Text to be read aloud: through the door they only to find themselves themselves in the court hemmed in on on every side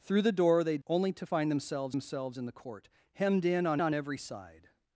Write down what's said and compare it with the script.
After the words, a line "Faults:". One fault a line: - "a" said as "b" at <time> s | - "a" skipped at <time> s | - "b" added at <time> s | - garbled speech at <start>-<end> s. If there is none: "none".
through the door they only to find themselves themselves in the court hemmed in on on every side
Faults:
none